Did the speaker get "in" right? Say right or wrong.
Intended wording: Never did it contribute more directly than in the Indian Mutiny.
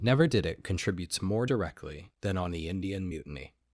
wrong